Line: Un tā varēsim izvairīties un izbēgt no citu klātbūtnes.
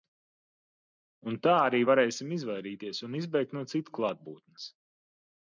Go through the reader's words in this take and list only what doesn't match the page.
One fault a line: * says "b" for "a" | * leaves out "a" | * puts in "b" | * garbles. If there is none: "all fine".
* puts in "arī"